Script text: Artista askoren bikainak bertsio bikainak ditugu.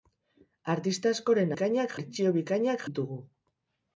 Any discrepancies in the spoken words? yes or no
no